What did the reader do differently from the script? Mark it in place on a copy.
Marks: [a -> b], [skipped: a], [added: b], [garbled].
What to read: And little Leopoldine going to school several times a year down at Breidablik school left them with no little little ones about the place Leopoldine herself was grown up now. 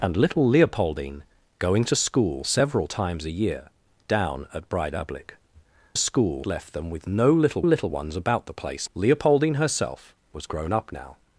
And little Leopoldine going to school several times a year down at Breidablik school left them with no little little ones about the place Leopoldine herself was grown up now.